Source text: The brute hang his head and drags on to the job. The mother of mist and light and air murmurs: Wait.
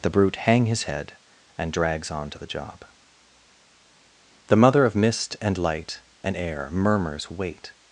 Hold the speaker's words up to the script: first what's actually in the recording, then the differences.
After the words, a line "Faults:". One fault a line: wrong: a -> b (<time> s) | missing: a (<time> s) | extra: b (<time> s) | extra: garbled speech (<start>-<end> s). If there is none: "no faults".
The brute hang his head and drags on to the job. The mother of mist and light and air murmurs: Wait.
Faults:
no faults